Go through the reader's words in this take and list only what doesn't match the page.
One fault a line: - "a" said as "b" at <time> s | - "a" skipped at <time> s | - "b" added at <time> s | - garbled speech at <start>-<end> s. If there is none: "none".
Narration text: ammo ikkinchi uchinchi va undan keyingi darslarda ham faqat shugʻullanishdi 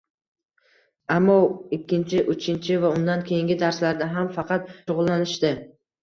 none